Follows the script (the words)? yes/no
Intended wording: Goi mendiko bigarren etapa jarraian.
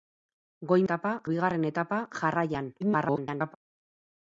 no